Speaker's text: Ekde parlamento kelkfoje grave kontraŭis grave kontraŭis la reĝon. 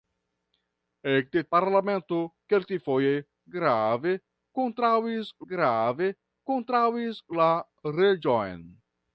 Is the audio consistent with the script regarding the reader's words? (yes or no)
yes